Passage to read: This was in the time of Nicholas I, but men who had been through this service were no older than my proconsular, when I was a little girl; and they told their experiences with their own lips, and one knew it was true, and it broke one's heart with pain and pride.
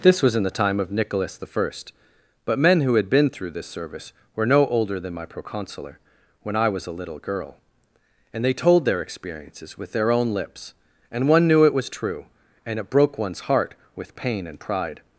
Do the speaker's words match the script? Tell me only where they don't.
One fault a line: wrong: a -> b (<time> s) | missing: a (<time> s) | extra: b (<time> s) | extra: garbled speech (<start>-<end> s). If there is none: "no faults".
no faults